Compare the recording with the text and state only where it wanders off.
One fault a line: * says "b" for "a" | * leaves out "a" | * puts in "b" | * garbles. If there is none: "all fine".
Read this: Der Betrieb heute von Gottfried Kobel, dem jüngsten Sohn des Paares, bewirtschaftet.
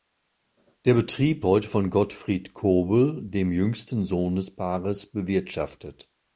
all fine